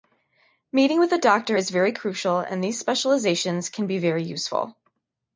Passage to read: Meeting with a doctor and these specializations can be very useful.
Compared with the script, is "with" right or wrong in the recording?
right